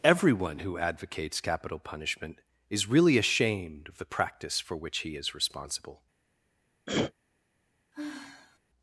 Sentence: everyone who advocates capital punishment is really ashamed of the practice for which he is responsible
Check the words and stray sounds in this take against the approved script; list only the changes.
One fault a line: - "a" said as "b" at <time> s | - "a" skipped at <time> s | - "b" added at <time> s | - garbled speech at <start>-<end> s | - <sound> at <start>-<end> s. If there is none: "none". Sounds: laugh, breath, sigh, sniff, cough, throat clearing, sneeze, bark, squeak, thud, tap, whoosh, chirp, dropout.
- throat clearing at 6.9-7.1 s
- sigh at 7.9-8.6 s